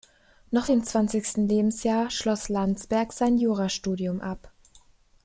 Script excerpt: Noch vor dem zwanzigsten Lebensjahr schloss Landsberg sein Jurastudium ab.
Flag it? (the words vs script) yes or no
yes